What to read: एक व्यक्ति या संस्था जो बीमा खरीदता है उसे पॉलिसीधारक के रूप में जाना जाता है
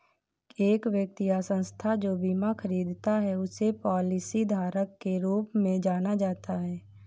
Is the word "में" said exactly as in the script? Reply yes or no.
yes